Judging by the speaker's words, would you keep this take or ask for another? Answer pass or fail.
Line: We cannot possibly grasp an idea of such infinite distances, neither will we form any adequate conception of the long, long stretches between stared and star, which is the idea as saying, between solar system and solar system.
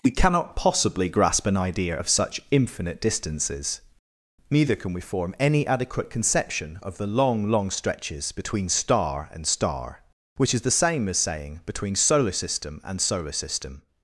fail